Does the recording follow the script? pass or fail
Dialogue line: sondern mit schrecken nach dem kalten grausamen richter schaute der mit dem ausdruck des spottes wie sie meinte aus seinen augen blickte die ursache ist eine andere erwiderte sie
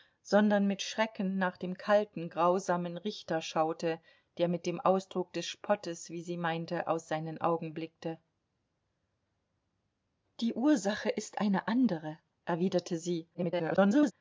fail